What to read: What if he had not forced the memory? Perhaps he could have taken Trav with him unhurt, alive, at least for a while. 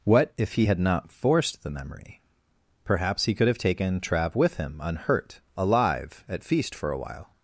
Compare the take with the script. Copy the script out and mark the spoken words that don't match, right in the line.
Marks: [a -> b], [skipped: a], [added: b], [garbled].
What if he had not forced the memory? Perhaps he could have taken Trav with him unhurt, alive, at [least -> feast] for a while.